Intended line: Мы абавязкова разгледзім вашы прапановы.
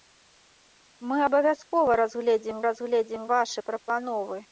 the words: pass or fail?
fail